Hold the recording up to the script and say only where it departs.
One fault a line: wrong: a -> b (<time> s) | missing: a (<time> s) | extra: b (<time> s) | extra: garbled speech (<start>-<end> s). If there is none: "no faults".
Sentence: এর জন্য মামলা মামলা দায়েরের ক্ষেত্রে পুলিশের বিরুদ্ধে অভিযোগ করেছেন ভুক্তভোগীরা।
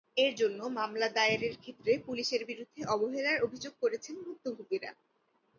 missing: মামলা (1.1 s)
extra: অবহেলার (2.9 s)